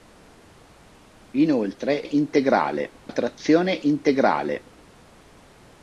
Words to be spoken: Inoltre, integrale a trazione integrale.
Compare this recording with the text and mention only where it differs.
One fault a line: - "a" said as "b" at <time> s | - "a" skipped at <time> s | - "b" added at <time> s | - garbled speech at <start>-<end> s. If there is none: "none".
none